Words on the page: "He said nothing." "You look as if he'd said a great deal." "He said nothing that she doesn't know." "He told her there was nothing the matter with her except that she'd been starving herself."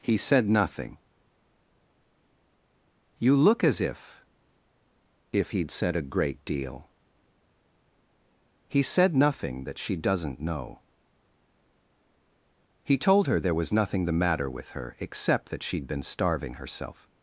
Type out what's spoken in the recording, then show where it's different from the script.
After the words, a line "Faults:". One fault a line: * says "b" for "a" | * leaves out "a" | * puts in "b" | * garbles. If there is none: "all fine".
"He said nothing." "You look as if if he'd said a great deal." "He said nothing that she doesn't know." "He told her there was nothing the matter with her except that she'd been starving herself."
Faults:
* puts in "if"